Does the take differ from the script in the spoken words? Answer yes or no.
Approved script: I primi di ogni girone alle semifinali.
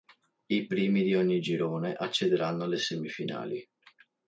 yes